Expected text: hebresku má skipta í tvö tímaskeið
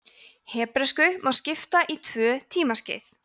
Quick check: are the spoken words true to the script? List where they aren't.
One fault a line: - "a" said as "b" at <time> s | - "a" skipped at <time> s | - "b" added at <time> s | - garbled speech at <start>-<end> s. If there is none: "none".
none